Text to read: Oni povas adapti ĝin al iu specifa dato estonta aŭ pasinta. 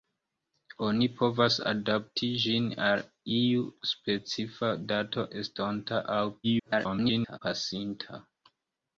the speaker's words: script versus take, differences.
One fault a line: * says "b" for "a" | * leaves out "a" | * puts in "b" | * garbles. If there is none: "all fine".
* garbles